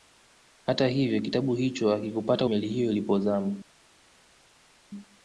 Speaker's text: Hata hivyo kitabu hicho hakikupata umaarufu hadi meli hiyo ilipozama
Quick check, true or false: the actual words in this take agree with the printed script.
false